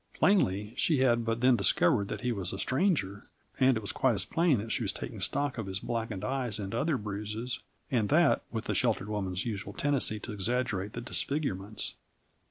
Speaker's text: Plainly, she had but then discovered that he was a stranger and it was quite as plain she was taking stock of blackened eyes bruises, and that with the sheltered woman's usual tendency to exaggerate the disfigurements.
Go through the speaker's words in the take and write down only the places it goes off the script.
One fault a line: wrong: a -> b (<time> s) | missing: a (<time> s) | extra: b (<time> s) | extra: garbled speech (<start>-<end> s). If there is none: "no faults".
extra: that (4.6 s)
extra: his (5.6 s)
extra: and other (6.6 s)